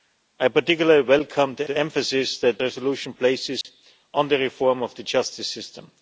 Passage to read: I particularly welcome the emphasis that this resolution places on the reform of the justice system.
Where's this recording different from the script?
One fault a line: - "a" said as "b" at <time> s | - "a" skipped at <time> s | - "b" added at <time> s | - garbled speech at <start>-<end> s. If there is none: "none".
- "the" added at 1.6 s
- "this" skipped at 2.6 s